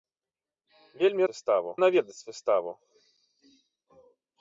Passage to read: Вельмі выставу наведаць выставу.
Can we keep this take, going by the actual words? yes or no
yes